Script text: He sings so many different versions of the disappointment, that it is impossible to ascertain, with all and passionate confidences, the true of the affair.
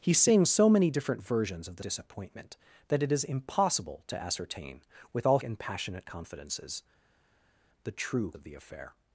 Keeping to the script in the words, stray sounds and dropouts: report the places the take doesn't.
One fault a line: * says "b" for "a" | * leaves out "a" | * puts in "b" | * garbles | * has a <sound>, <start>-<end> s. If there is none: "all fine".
all fine